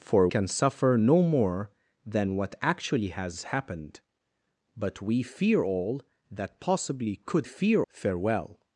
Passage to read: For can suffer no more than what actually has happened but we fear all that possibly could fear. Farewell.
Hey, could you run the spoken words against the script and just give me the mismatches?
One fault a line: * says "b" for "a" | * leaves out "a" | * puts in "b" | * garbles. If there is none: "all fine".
all fine